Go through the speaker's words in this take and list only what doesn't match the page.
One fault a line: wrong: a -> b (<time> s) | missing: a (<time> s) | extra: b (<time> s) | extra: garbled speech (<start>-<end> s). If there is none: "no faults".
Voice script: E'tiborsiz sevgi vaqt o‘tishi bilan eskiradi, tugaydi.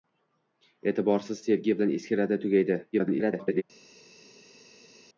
missing: vaqt o‘tishi (1.8 s)
extra: garbled speech (2.9-3.6 s)